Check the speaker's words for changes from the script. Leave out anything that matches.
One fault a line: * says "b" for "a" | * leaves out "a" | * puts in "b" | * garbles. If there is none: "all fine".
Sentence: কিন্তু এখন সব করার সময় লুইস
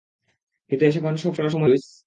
all fine